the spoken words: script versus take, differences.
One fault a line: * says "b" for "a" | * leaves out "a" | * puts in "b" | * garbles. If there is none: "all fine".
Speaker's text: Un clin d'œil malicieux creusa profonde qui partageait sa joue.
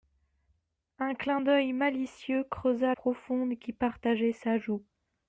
all fine